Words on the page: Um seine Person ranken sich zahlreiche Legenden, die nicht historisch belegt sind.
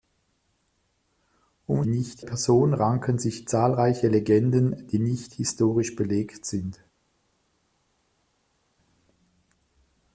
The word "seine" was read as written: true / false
false